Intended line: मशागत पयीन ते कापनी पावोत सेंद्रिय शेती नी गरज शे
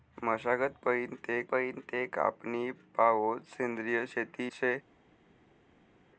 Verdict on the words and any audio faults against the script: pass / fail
fail